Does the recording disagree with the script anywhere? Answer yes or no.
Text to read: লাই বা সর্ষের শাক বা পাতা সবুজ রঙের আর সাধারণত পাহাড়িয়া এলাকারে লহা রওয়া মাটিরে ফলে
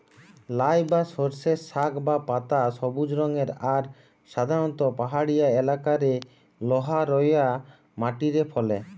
no